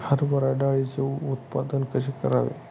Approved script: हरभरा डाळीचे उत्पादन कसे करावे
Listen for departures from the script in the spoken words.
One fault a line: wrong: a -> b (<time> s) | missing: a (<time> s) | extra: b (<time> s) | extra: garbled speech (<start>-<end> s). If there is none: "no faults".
no faults